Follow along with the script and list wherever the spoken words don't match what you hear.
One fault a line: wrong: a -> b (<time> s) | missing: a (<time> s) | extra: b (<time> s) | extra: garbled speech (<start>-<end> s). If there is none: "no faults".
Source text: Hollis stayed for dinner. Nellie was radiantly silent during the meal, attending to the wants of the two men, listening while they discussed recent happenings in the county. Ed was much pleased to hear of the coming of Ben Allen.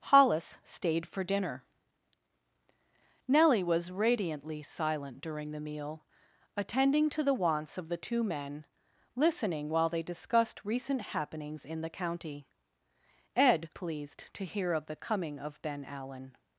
missing: was much (13.7 s)